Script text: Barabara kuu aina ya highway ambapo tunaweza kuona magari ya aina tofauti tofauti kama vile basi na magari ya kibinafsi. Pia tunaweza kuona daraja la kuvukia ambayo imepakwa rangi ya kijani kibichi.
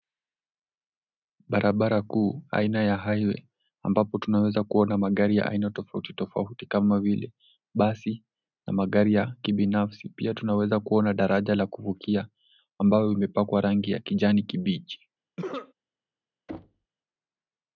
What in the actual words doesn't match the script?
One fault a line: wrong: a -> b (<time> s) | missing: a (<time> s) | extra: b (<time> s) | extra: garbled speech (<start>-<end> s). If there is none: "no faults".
no faults